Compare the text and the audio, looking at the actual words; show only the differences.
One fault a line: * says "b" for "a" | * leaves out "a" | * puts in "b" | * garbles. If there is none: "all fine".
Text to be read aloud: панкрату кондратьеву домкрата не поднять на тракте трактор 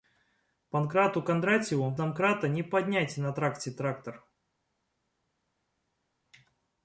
all fine